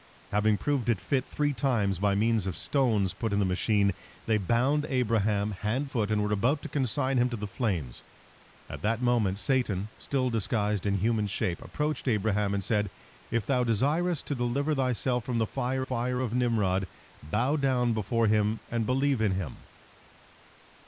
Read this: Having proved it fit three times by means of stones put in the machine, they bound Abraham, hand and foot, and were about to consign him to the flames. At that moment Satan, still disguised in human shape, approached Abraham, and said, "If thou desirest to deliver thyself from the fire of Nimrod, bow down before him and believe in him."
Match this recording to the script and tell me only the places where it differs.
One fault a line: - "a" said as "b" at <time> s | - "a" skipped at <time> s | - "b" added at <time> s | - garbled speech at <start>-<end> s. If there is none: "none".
- "and" skipped at 5.9 s
- "fire" added at 15.8 s